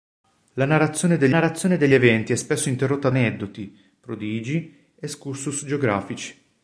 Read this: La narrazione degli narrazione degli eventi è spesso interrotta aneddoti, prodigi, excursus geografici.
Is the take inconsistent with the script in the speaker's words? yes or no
no